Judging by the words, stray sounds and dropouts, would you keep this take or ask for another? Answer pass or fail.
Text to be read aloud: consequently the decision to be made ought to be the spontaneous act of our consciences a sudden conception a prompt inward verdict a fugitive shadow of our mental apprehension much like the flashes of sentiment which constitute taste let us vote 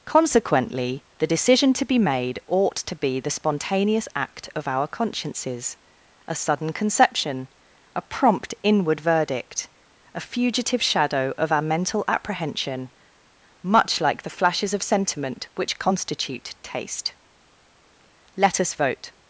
pass